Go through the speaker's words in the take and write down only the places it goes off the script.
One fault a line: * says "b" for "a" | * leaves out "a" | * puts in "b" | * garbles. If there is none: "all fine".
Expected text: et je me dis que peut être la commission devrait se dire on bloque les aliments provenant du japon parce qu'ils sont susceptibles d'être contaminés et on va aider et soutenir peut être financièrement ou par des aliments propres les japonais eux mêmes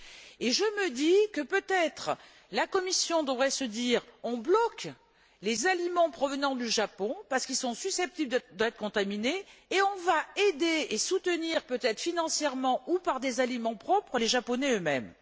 all fine